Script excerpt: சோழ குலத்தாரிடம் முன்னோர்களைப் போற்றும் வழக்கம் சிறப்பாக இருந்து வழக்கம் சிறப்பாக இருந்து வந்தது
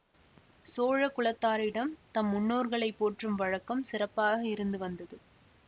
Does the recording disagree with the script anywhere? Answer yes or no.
yes